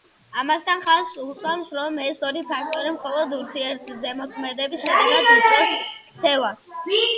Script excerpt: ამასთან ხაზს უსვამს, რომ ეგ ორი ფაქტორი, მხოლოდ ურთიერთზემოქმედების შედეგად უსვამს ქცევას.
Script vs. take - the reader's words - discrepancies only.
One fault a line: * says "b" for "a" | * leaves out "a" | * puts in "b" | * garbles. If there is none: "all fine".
* says "ეს" for "ეგ"
* says "იწვევს" for "უსვამს"